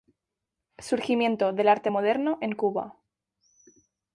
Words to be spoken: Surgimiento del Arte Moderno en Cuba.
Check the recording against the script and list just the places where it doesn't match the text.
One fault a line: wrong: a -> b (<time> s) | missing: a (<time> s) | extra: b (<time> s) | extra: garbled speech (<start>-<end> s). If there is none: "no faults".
no faults